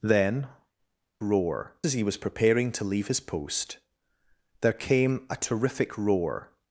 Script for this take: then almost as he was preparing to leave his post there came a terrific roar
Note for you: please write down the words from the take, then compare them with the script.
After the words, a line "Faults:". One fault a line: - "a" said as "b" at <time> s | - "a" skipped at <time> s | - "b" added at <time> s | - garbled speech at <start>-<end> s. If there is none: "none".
then roar as he was preparing to leave his post there came a terrific roar
Faults:
- "almost" said as "roar" at 1.2 s